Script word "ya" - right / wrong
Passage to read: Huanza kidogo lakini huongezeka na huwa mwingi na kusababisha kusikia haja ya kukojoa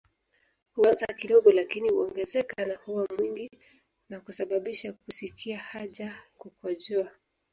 wrong